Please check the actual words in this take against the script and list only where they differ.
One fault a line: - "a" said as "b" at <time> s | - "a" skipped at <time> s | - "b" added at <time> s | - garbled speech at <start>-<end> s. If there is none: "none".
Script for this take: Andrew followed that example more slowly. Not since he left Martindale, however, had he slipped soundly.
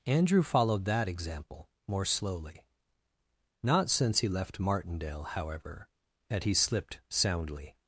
none